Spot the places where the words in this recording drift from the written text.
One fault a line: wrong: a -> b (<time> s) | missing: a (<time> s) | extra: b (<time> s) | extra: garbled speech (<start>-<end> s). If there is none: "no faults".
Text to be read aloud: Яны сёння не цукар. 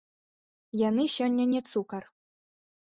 no faults